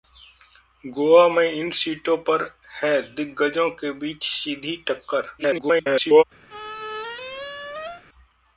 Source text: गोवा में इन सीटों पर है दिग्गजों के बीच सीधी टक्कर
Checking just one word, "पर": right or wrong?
right